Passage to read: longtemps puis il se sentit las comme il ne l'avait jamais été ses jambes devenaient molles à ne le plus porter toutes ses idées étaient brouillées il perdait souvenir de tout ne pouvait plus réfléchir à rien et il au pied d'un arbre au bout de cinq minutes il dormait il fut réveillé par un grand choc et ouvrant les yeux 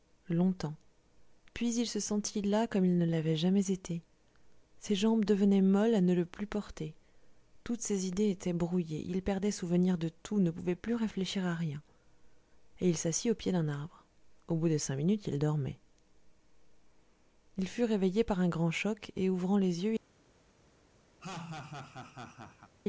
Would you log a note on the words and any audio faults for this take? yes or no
yes